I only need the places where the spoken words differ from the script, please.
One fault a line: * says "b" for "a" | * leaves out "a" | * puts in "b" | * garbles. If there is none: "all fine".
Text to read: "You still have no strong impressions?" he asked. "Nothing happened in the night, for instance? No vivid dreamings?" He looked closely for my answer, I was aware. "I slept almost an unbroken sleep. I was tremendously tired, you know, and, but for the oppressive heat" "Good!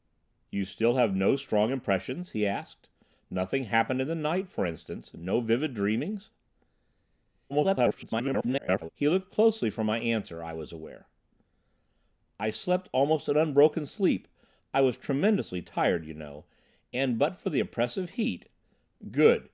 * garbles